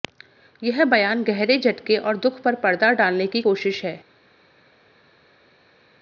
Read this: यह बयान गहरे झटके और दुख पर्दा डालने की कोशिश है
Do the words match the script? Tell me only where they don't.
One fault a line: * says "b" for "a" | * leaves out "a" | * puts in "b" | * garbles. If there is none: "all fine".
* puts in "पर"